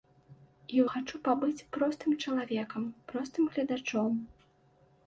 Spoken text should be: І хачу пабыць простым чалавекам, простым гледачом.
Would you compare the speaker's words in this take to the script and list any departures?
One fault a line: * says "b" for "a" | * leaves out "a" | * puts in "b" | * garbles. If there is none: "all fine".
all fine